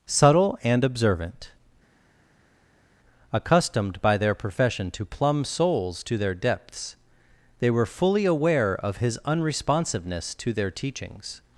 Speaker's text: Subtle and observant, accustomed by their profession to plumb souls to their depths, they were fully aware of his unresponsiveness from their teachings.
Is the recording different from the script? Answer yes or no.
yes